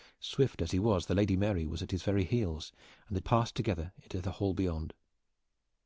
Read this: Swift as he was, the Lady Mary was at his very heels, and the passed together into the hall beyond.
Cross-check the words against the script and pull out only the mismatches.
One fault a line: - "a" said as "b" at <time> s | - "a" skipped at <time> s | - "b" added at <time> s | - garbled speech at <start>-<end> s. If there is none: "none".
none